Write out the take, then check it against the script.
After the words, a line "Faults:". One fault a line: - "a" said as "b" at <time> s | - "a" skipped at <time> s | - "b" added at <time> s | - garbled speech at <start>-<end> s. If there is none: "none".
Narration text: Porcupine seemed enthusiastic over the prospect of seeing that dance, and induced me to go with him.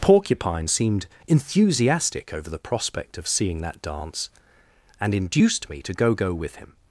Porcupine seemed enthusiastic over the prospect of seeing that dance, and induced me to go go with him.
Faults:
- "go" added at 6.2 s